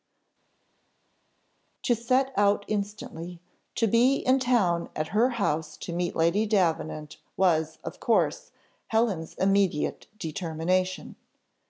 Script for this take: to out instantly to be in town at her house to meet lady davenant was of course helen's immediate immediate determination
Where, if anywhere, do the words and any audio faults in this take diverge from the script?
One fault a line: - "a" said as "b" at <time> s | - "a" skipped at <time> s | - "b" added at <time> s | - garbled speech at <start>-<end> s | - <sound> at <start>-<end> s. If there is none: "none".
- "set" added at 2.0 s
- "immediate" skipped at 10.1 s